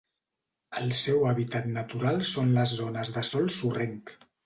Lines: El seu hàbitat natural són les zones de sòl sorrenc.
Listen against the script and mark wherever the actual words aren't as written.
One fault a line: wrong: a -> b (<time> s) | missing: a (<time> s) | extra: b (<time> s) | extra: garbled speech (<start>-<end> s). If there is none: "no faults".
no faults